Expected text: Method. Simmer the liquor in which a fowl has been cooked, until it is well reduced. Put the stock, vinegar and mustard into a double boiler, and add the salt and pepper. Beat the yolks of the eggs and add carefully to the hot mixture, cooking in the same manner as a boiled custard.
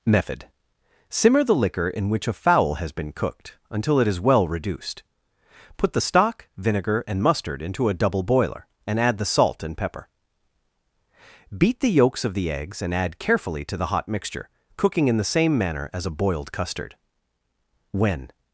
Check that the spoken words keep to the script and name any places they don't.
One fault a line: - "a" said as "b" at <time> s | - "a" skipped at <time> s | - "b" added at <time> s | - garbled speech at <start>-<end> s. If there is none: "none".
- "When" added at 17.9 s